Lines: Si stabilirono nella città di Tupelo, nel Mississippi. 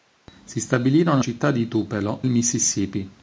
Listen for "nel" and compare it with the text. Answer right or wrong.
wrong